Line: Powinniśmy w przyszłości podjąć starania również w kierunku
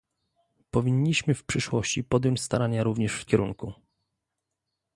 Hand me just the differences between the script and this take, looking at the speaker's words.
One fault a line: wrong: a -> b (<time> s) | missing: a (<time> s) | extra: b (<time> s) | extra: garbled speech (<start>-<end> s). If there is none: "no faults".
no faults